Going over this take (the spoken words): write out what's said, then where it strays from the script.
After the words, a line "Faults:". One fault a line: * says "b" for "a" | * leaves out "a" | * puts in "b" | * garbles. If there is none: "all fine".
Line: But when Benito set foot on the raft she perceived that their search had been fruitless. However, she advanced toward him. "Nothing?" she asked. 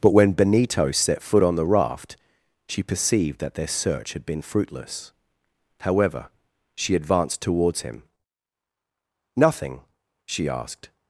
But when Benito set foot on the raft she perceived that their search had been fruitless. However, she advanced towards him. "Nothing?" she asked.
Faults:
* says "towards" for "toward"